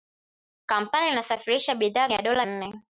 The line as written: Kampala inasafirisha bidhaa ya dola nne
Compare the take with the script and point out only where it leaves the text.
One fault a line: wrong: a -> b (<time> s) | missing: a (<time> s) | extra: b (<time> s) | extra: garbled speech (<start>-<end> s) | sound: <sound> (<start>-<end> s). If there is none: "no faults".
no faults